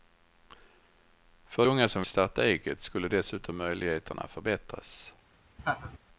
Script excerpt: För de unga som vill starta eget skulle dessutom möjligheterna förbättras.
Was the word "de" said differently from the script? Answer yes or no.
yes